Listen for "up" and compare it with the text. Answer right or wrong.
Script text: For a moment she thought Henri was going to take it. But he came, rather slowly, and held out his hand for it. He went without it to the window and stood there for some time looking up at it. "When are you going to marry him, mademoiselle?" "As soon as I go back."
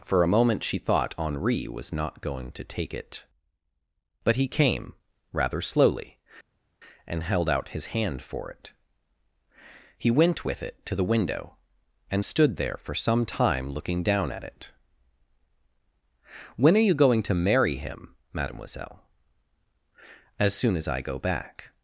wrong